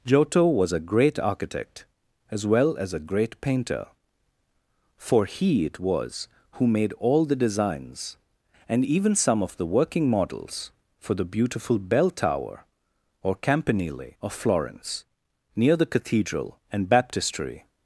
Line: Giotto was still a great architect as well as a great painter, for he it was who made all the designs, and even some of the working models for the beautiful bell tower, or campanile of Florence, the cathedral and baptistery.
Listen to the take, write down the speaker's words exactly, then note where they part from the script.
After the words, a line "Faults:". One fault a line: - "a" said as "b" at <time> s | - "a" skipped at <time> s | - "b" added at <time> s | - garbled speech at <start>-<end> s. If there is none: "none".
Giotto was a great architect as well as a great painter, for he it was who made all the designs, and even some of the working models for the beautiful bell tower, or campanile of Florence, near the cathedral and baptistery.
Faults:
- "still" skipped at 0.7 s
- "near" added at 15.6 s